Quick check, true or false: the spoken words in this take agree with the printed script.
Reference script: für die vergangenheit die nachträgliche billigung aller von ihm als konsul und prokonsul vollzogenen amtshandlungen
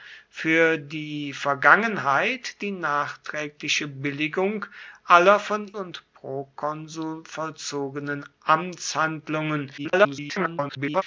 false